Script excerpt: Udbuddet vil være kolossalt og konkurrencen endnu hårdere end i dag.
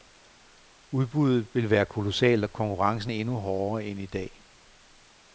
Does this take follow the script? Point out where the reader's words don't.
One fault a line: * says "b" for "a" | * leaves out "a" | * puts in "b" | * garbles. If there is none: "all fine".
all fine